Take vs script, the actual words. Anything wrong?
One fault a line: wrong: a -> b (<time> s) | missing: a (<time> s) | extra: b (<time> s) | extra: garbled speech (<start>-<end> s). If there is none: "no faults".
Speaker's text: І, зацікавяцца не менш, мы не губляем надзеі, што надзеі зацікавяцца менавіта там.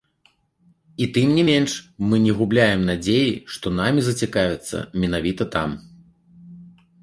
wrong: зацікавяцца -> тым (1.2 s)
wrong: надзеі -> намі (3.8 s)